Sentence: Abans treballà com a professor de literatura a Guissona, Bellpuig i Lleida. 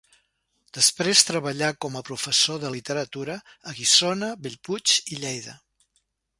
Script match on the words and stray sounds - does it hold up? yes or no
no